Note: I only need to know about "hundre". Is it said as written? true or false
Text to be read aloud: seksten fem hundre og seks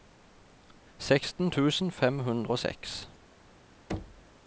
true